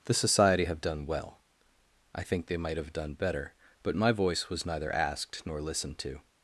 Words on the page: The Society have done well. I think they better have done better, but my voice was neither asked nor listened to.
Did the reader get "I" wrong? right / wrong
right